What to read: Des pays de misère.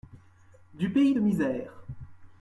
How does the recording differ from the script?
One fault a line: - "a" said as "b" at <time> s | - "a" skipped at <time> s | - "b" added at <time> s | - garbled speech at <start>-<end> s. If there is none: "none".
- "Des" said as "Du" at 0.7 s